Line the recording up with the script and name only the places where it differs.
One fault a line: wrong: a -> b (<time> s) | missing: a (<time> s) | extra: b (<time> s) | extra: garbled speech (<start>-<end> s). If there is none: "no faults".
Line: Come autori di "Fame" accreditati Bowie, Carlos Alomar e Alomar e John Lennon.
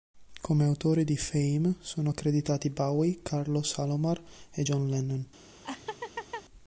extra: sono (1.8 s)
missing: Alomar e (4.6 s)